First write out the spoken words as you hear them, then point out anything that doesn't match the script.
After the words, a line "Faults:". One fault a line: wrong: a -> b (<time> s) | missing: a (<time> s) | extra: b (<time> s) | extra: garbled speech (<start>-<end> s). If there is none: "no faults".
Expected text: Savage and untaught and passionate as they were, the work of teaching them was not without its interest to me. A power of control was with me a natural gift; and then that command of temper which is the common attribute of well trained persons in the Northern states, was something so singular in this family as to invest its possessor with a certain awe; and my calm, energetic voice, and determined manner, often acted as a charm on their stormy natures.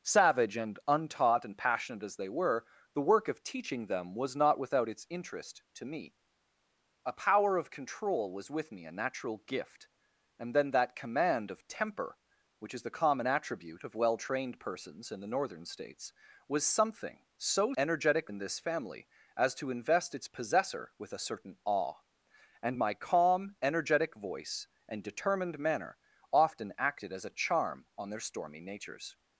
Savage and untaught and passionate as they were, the work of teaching them was not without its interest to me. A power of control was with me a natural gift; and then that command of temper which is the common attribute of well trained persons in the Northern states, was something so energetic in this family as to invest its possessor with a certain awe; and my calm, energetic voice, and determined manner, often acted as a charm on their stormy natures.
Faults:
wrong: singular -> energetic (17.8 s)